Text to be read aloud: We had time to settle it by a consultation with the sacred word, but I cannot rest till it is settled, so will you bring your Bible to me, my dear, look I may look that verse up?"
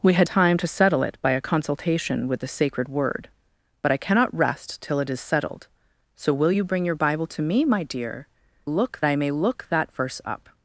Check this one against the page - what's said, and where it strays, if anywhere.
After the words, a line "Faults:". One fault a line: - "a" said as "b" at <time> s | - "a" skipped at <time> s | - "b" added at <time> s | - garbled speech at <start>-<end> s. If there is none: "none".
We had time to settle it by a consultation with the sacred word, but I cannot rest till it is settled, so will you bring your Bible to me, my dear, look I may look that verse up?"
Faults:
none